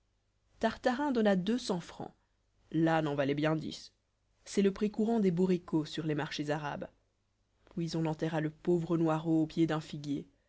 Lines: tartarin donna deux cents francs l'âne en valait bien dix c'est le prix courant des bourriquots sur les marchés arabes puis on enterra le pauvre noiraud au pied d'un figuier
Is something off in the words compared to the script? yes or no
no